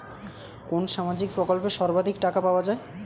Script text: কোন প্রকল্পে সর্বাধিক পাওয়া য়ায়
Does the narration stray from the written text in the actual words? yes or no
yes